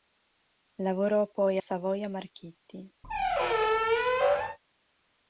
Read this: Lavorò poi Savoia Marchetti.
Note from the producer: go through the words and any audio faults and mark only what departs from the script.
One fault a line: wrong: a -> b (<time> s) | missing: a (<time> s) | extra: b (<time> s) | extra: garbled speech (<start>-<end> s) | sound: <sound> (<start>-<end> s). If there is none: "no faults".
sound: squeak (3.0-4.6 s)